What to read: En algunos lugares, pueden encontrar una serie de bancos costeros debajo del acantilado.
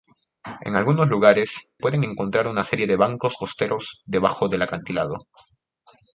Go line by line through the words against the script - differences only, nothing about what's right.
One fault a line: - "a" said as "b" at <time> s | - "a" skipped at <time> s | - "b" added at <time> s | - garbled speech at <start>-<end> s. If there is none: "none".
none